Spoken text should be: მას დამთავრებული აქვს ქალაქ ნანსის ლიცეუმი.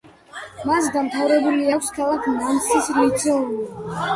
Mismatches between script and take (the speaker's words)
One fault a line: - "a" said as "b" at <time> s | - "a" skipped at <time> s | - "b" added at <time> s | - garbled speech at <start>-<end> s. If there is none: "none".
none